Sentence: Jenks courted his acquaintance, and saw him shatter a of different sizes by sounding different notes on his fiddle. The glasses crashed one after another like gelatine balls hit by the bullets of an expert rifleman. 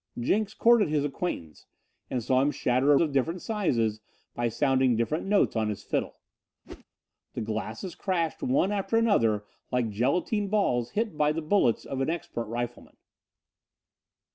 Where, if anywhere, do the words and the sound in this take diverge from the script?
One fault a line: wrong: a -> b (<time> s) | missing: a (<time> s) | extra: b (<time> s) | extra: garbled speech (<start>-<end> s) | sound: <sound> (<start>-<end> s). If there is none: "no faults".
sound: whoosh (6.6-6.8 s)